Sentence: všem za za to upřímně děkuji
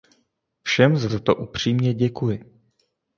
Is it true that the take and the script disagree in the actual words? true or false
false